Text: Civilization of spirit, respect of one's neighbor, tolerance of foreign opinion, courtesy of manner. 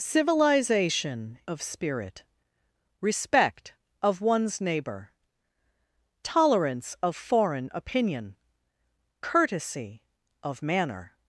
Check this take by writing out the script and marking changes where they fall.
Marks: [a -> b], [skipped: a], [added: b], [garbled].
Civilization of spirit, respect of one's neighbor, tolerance of foreign opinion, courtesy of manner.